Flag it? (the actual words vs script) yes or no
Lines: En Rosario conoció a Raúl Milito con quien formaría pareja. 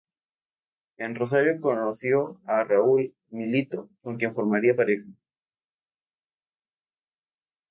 no